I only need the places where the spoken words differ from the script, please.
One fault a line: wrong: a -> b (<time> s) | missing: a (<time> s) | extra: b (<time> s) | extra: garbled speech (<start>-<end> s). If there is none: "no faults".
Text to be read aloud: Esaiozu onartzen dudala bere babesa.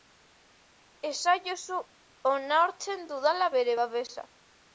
no faults